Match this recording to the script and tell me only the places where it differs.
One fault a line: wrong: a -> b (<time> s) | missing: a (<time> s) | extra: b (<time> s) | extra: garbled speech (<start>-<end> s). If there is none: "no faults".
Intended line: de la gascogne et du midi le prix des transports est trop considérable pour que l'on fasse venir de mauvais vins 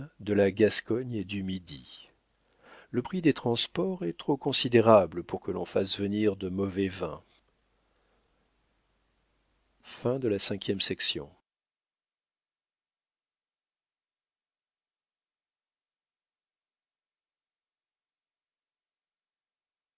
no faults